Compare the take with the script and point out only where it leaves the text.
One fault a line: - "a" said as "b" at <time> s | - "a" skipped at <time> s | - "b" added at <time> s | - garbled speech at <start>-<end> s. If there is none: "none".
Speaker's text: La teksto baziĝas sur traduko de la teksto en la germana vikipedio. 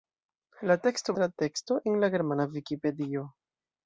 - "baziĝas sur traduko" skipped at 1.1 s